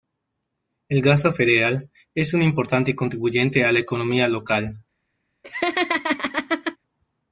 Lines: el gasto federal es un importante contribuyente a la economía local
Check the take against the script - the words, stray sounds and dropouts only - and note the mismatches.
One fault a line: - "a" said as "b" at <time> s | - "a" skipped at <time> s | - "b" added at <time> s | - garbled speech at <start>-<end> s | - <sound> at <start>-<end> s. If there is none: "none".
- laugh at 5.4-6.8 s